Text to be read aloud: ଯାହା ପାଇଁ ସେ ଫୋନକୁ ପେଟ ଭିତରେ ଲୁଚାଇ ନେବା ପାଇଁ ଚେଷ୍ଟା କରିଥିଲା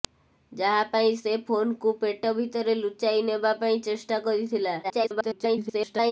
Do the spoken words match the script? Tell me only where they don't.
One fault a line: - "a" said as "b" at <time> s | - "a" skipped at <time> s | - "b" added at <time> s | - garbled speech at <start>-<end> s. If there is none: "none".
- garbled speech at 4.8-6.1 s